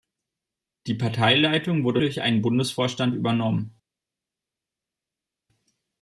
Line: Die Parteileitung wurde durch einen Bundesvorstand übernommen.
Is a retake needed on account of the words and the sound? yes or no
no